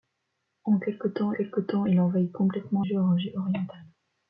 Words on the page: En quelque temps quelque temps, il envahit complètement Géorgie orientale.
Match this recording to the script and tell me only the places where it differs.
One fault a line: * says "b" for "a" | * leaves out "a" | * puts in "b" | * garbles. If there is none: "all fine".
all fine